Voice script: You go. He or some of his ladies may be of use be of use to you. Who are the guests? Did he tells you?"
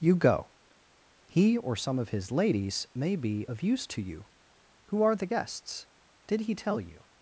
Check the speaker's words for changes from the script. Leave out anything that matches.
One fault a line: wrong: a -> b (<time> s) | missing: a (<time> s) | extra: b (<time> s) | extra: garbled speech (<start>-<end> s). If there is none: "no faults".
missing: be of use (3.9 s)
wrong: tells -> tell (6.5 s)